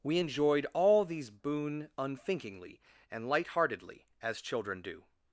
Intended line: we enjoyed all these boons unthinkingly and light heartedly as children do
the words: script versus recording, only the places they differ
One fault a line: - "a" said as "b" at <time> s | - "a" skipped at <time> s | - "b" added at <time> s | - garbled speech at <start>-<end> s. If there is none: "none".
- "boons" said as "boon" at 1.3 s